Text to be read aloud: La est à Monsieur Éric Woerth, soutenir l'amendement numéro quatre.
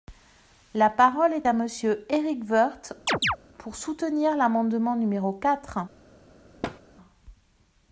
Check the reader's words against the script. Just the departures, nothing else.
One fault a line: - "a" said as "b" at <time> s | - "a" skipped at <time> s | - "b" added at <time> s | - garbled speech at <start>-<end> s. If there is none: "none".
- "parole" added at 0.9 s
- "pour" added at 3.6 s